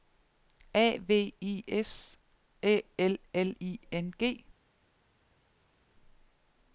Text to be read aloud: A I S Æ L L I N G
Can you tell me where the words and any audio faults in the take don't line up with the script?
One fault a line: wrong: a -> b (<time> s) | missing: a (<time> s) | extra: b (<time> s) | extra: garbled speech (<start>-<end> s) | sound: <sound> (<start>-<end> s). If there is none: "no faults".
extra: V (1.0 s)